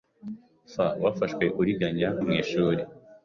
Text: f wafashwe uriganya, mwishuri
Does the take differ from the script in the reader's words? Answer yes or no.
no